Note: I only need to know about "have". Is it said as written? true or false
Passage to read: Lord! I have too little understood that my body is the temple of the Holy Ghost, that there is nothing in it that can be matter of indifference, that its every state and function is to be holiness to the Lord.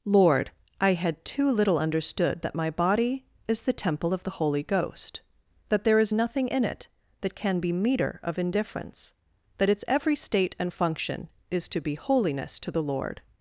false